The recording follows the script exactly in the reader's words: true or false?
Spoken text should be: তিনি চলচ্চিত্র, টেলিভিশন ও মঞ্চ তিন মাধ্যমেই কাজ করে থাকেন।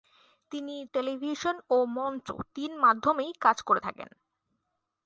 false